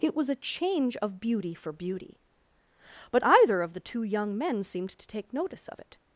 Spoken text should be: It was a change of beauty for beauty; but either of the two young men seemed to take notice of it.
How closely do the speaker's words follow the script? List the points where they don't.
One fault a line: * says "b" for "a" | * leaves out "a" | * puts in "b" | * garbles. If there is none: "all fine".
all fine